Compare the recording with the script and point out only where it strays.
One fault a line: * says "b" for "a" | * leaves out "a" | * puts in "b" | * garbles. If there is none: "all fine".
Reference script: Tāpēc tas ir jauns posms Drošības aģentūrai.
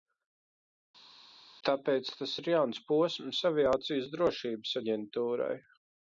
* puts in "Aviācijas"